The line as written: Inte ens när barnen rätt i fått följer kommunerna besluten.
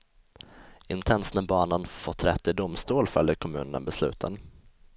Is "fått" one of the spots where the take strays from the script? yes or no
yes